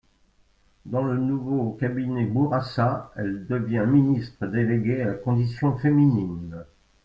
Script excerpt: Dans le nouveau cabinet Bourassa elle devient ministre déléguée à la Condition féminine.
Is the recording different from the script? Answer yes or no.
no